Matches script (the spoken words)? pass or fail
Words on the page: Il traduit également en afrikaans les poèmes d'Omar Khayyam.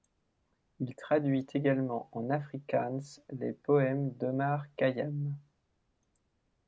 pass